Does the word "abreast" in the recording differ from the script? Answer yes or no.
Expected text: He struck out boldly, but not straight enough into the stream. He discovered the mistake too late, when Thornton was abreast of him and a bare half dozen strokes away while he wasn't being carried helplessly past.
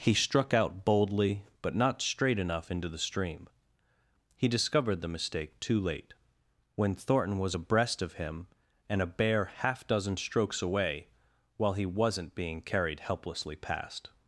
no